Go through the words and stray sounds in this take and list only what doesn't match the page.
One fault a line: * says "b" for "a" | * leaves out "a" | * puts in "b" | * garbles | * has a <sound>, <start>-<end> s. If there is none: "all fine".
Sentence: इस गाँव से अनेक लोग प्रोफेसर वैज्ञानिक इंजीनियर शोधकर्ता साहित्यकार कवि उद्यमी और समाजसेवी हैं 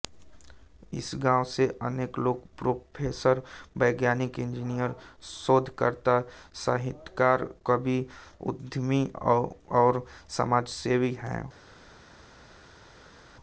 all fine